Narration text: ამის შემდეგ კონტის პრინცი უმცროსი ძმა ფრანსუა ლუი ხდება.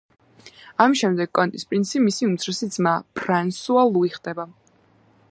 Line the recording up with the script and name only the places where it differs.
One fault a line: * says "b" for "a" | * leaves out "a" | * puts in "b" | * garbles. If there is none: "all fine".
* puts in "მისი"